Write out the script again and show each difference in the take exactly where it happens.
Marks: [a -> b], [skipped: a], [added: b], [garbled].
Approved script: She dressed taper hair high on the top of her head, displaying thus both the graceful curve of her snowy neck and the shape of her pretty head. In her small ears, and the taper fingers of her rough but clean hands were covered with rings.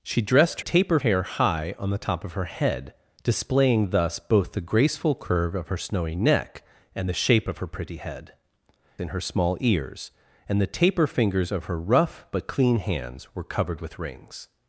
She dressed taper hair high on the top of her head, displaying thus both the graceful curve of her snowy neck and the shape of her pretty head. In her small ears, and the taper fingers of her rough but clean hands were covered with rings.